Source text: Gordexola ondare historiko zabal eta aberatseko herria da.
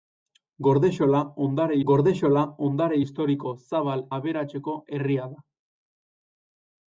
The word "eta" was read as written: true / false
false